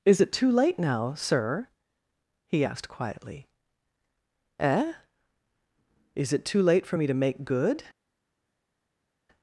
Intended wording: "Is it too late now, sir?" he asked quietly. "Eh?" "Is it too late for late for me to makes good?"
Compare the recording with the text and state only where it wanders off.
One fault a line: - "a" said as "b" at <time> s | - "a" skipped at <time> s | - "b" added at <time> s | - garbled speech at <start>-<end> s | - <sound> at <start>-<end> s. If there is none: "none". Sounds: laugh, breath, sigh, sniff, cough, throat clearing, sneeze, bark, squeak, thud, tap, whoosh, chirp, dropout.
- "late for" skipped at 7.0 s
- "makes" said as "make" at 7.1 s